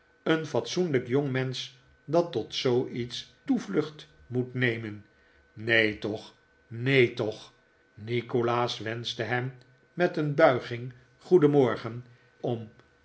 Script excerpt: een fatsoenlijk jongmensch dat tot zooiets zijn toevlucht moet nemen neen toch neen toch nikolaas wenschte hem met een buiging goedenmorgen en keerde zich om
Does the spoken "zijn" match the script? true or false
false